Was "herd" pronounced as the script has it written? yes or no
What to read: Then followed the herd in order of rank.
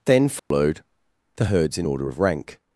no